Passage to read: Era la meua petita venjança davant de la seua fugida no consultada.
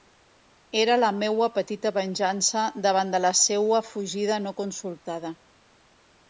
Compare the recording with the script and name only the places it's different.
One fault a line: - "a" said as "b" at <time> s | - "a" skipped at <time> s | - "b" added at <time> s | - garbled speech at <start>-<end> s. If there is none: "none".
none